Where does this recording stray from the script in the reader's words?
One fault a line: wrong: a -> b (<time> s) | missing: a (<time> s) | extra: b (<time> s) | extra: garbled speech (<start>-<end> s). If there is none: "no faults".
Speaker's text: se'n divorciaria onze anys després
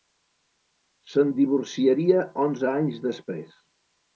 no faults